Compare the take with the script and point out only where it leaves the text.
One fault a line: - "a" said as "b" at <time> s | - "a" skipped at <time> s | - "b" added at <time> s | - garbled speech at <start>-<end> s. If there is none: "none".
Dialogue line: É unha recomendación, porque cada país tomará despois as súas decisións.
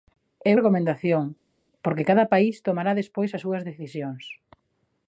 - "unha" skipped at 0.5 s